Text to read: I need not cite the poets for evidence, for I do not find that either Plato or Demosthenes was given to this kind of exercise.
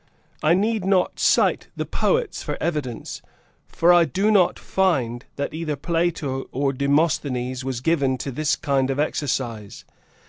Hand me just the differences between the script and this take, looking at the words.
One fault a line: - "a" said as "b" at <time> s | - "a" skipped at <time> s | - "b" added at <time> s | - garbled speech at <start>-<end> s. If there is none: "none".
none